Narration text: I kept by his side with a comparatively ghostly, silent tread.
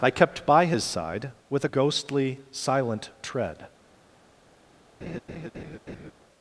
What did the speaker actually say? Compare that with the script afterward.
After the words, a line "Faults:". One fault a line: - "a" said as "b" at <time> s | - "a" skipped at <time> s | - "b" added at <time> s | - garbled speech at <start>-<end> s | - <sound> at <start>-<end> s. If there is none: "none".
I kept by his side with a ghostly, silent tread.
Faults:
- "comparatively" skipped at 1.7 s
- laugh at 5.0-6.1 s